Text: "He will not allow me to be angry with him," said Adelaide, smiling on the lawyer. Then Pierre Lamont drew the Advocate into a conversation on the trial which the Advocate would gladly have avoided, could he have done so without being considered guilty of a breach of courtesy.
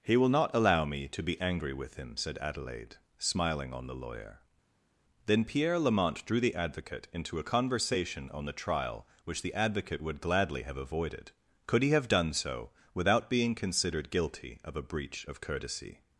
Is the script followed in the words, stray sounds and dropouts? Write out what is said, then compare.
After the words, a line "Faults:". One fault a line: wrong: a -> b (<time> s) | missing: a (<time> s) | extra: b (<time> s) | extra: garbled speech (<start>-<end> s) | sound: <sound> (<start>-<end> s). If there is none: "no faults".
"He will not allow me to be angry with him," said Adelaide, smiling on the lawyer. Then Pierre Lamont drew the Advocate into a conversation on the trial which the Advocate would gladly have avoided, could he have done so without being considered guilty of a breach of courtesy.
Faults:
no faults